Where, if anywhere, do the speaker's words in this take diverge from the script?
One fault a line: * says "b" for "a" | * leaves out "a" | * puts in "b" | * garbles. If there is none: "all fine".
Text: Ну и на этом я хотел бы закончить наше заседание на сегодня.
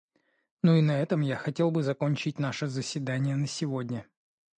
all fine